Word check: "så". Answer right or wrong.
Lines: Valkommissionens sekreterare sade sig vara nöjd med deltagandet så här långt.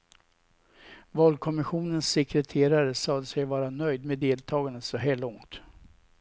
right